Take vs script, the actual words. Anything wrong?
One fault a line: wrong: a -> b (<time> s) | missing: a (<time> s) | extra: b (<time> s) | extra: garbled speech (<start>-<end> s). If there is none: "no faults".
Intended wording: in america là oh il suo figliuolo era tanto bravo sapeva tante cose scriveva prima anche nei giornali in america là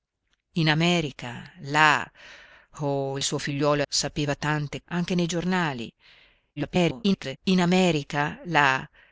missing: era tanto bravo (3.8 s)
missing: cose scriveva prima (4.8 s)
extra: garbled speech (6.6-7.4 s)